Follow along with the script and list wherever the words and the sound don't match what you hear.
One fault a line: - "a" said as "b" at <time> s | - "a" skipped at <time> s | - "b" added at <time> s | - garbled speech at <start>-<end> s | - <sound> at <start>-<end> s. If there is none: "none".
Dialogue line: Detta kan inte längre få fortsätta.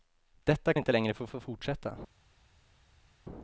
- "kan" skipped at 0.7 s
- "få" added at 1.3 s